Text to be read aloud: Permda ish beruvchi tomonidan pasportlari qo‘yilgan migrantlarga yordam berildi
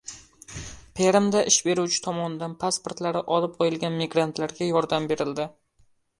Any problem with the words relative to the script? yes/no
yes